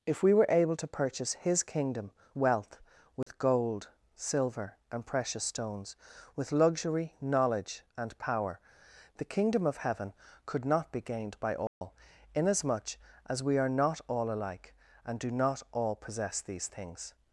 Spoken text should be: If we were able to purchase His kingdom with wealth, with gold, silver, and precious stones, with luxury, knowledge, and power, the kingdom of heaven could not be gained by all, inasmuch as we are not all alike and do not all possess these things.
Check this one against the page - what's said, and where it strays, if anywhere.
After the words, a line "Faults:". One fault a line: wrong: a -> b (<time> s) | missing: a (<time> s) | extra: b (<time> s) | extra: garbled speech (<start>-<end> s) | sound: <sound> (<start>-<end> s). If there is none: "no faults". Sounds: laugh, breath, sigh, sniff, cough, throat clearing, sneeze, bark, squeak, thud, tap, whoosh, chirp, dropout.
If we were able to purchase His kingdom wealth, with gold, silver, and precious stones, with luxury, knowledge, and power, the kingdom of heaven could not be gained by all, inasmuch as we are not all alike and do not all possess these things.
Faults:
missing: with (2.1 s)
sound: dropout (3.2-3.3 s)
sound: dropout (11.7-11.8 s)